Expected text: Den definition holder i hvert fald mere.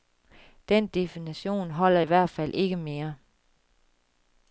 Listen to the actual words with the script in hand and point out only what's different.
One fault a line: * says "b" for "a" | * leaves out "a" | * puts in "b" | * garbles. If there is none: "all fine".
* puts in "ikke"